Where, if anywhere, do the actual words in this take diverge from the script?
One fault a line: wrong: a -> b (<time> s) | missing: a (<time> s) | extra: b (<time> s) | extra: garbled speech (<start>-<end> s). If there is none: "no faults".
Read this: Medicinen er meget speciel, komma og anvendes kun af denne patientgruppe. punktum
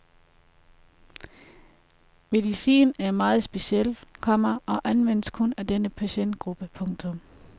no faults